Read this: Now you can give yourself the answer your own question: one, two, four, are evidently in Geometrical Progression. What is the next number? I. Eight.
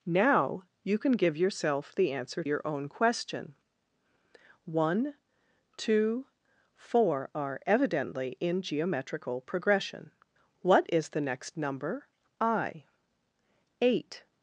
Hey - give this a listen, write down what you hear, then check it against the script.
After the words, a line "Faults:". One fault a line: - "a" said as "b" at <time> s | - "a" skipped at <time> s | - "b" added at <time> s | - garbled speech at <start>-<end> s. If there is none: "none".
Now you can give yourself the answer your own question: one, two, four, are evidently in Geometrical Progression. What is the next number? I. Eight.
Faults:
none